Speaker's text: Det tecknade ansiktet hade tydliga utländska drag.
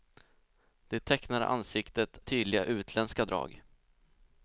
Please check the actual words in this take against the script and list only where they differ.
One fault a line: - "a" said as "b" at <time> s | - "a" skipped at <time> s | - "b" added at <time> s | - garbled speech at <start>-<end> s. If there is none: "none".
- "hade" skipped at 2.2 s